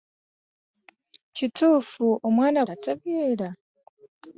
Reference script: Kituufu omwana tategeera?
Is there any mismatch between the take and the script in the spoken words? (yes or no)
no